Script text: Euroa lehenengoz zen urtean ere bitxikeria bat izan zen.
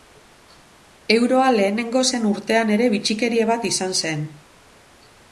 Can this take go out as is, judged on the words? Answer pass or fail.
pass